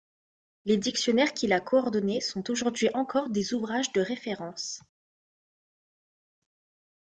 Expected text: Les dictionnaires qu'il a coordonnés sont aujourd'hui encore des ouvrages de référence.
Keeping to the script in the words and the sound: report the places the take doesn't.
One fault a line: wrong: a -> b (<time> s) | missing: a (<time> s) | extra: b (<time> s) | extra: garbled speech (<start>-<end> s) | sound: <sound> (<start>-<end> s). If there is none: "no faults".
no faults